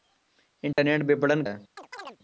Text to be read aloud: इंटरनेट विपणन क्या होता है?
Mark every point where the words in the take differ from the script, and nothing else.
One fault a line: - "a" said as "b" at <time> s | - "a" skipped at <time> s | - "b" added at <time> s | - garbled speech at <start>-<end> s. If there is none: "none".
- "क्या होता" skipped at 1.4 s